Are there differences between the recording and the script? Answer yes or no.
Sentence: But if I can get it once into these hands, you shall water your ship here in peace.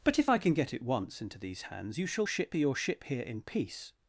yes